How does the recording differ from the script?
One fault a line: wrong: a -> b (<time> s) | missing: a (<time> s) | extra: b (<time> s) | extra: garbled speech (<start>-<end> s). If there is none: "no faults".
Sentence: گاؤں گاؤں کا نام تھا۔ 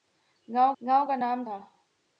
no faults